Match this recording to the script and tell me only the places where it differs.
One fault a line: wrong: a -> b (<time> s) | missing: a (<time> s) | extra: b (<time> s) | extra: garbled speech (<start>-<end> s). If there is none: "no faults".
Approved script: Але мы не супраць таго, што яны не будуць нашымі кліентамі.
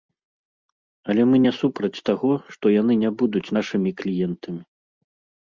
no faults